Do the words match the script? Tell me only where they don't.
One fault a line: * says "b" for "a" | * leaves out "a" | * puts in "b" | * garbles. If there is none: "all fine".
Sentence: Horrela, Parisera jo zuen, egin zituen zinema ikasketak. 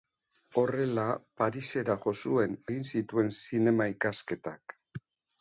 all fine